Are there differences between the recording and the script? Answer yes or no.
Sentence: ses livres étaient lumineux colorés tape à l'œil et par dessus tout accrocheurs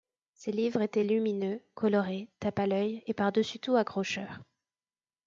no